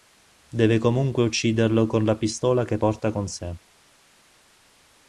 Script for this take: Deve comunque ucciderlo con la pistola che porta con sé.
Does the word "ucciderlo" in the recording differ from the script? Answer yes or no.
no